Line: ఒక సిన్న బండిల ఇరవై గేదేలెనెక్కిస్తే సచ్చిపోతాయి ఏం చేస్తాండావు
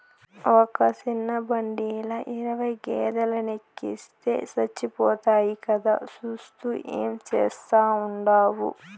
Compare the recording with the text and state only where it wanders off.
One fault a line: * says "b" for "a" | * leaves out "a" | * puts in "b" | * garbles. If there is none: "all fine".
* puts in "కదా సూత్తూ"